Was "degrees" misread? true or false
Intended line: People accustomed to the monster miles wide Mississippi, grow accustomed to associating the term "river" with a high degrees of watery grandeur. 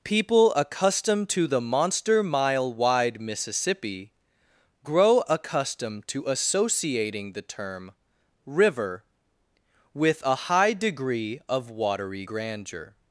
true